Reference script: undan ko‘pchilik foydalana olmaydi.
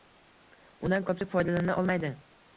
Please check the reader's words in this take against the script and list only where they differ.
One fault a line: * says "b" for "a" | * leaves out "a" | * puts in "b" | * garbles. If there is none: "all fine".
all fine